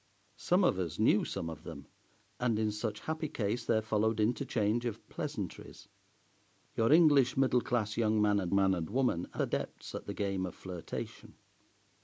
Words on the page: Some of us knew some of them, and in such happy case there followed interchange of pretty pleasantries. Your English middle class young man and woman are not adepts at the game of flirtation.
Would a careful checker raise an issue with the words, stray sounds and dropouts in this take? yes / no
yes